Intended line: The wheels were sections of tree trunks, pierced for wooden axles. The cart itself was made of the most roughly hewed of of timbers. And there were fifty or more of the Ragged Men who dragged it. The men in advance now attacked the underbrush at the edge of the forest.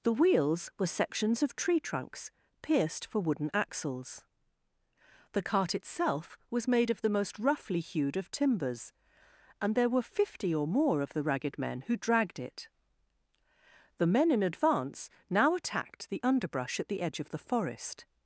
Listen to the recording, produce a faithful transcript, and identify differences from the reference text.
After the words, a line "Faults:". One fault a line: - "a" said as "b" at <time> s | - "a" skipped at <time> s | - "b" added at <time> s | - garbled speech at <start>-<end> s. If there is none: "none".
The wheels were sections of tree trunks, pierced for wooden axles. The cart itself was made of the most roughly hewed of timbers. And there were fifty or more of the Ragged Men who dragged it. The men in advance now attacked the underbrush at the edge of the forest.
Faults:
- "of" skipped at 8.3 s